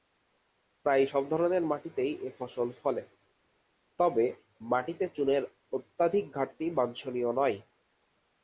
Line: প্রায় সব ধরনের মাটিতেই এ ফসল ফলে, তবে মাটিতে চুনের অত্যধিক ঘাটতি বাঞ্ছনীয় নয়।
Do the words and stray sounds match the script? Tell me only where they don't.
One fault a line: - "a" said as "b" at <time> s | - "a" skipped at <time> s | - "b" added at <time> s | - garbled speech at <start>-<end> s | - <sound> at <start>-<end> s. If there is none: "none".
none